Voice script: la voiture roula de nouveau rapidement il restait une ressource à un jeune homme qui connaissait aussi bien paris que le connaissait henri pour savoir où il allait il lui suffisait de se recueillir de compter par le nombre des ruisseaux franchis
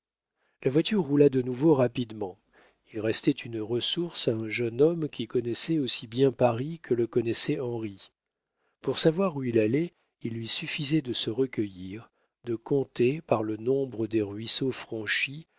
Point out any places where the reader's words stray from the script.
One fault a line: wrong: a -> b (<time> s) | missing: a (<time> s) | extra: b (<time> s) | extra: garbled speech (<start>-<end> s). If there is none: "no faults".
no faults